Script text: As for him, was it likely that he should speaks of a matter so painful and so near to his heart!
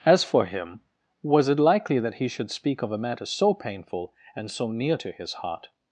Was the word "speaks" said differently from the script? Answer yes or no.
yes